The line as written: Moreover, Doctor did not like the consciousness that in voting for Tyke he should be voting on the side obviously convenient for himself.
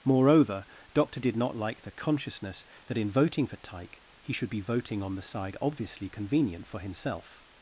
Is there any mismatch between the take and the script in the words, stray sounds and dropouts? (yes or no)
no